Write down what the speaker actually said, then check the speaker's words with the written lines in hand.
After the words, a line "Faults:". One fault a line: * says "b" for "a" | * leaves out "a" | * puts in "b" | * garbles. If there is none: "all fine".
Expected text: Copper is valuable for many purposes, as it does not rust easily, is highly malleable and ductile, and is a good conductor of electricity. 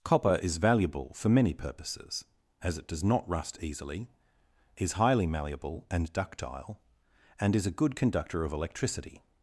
Copper is valuable for many purposes, as it does not rust easily, is highly malleable and ductile, and is a good conductor of electricity.
Faults:
all fine